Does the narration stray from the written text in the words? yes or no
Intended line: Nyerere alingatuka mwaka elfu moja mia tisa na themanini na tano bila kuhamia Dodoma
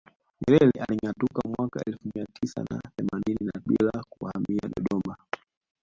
yes